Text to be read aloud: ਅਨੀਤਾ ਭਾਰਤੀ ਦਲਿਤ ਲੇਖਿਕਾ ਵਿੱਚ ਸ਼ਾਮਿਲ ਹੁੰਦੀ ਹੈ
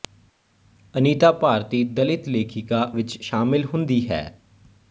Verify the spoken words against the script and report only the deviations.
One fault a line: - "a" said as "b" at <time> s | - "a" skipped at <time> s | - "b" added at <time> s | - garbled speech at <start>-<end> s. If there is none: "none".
none